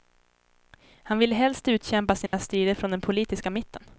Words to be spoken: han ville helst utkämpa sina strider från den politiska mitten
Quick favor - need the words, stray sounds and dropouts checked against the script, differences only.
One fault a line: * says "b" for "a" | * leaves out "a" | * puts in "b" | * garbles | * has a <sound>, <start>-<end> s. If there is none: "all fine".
* has a dropout, 2.3-2.3 s